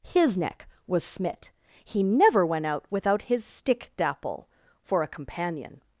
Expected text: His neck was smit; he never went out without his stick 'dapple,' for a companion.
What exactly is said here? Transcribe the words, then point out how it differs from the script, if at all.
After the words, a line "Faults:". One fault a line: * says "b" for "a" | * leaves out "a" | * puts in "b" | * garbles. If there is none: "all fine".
His neck was smit; he never went out without his stick 'dapple,' for a companion.
Faults:
all fine